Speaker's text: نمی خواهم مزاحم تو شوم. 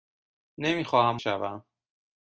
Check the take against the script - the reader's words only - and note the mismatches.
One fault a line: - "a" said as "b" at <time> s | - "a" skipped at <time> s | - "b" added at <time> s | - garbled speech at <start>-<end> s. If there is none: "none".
- "مزاحم تو" skipped at 1.2 s